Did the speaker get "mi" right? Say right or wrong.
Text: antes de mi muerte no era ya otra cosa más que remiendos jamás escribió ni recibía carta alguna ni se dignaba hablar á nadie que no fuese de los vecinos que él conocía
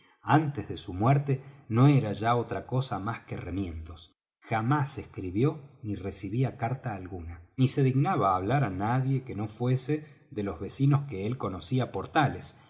wrong